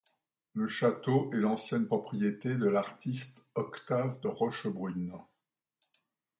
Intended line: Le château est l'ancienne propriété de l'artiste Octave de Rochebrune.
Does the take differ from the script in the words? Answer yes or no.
no